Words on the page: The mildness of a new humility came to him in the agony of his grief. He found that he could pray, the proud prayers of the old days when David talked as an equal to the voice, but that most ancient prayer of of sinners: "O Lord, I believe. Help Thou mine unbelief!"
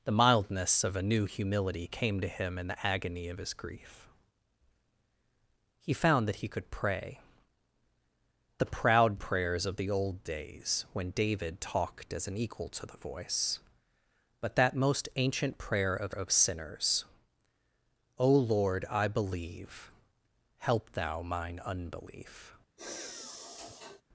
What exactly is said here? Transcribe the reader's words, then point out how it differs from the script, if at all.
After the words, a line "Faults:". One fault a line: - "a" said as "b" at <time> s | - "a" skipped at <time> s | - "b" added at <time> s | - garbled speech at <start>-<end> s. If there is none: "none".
The mildness of a new humility came to him in the agony of his grief. He found that he could pray, the proud prayers of the old days when David talked as an equal to the voice, but that most ancient prayer of of sinners: "O Lord, I believe. Help Thou mine unbelief!"
Faults:
none